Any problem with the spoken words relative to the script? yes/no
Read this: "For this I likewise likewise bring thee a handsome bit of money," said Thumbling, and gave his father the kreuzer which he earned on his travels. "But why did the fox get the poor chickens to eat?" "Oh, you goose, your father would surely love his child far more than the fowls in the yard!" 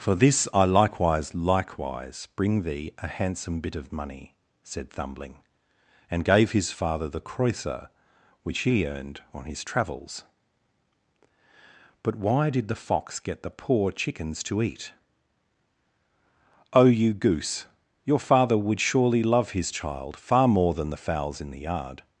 no